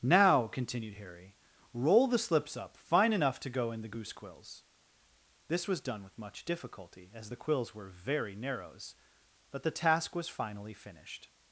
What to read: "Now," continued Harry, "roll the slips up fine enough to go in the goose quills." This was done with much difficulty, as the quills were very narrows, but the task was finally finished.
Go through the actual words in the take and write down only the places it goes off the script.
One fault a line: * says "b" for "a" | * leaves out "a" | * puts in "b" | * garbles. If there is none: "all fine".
all fine